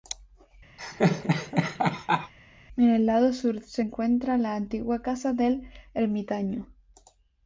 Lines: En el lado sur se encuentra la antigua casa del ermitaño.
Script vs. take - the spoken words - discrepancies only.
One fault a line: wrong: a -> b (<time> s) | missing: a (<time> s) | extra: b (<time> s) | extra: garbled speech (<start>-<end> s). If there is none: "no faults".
no faults